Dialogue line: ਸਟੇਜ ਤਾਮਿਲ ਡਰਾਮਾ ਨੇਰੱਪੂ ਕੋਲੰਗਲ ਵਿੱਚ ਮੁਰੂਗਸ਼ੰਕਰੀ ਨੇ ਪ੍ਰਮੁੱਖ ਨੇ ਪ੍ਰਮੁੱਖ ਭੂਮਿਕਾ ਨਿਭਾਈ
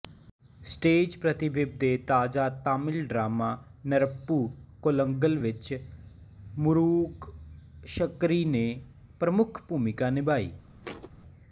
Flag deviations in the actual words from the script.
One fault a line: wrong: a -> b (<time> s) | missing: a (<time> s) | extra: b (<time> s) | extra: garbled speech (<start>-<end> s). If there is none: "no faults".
extra: ਪ੍ਰਤੀਬਿੰਬ ਦੇ ਤਾਜ਼ਾ (1.2 s)
missing: ਨੇ ਪ੍ਰਮੁੱਖ (9.6 s)